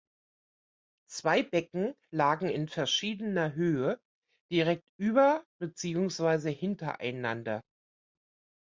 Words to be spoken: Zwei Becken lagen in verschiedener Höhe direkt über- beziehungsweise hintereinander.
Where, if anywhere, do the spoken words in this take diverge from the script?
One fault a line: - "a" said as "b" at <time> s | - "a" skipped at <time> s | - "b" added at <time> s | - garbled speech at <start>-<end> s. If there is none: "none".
none